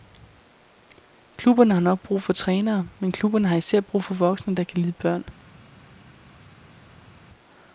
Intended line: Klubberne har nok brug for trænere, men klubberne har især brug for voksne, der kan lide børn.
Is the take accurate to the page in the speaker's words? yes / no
yes